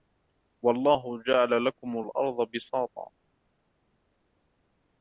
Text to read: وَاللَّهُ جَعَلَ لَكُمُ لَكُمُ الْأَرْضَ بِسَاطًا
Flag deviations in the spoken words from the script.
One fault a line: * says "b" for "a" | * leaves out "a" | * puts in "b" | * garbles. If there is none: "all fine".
* leaves out "لَكُمُ"